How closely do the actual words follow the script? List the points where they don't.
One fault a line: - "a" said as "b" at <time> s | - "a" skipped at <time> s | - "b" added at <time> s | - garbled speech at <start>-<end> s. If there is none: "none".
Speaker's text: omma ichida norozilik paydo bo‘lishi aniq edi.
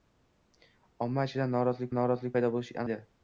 - "norozilik" added at 2.0 s
- "aniq" skipped at 2.8 s